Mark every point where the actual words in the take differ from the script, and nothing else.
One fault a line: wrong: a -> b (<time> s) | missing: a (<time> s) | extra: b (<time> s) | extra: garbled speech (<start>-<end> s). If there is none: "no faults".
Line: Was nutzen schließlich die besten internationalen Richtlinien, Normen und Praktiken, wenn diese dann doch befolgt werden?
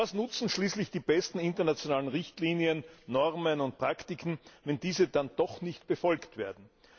extra: nicht (5.6 s)